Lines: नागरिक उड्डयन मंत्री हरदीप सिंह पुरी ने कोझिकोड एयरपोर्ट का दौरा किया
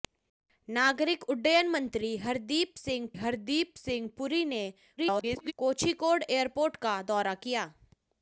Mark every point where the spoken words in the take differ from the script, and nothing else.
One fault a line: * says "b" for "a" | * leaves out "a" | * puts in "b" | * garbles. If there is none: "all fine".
* puts in "हरदीप सिंह"
* garbles